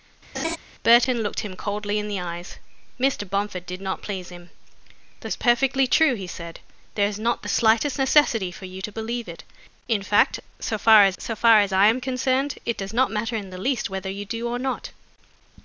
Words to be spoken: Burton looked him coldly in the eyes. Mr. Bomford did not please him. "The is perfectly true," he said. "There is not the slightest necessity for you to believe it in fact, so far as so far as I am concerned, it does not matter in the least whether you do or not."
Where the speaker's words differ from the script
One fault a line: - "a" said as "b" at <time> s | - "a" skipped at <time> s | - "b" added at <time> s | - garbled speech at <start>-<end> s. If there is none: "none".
none